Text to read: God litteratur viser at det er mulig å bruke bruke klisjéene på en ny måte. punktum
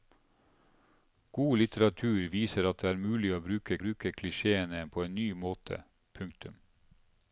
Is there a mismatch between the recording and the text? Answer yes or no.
no